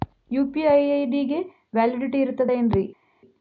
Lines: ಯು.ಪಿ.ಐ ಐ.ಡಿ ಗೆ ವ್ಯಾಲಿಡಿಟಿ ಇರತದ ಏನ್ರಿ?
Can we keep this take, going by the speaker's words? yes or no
yes